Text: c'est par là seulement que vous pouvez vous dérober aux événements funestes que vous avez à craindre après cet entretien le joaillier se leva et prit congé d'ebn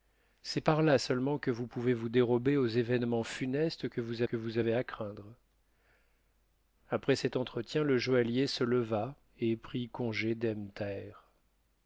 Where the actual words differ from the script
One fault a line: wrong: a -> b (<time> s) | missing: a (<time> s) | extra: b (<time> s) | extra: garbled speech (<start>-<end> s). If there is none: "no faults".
extra: que vous (4.2 s)